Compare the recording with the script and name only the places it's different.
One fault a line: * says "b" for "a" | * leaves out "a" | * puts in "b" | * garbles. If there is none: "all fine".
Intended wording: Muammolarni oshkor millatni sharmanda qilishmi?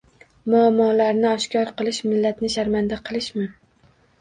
* puts in "qilish"